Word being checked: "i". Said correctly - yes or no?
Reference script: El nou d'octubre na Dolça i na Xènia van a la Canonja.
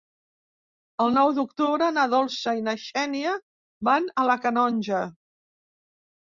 yes